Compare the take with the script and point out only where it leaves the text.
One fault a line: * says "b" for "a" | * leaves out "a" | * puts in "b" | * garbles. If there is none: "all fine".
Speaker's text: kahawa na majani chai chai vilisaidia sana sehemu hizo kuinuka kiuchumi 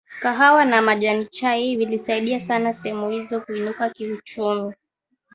* leaves out "chai"